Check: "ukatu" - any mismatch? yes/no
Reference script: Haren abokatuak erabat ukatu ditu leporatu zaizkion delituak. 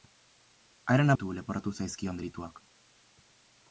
yes